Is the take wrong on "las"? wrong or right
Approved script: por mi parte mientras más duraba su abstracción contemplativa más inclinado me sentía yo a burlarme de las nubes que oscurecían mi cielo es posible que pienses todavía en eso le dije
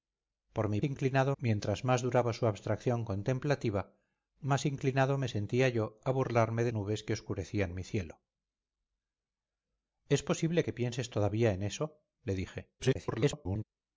wrong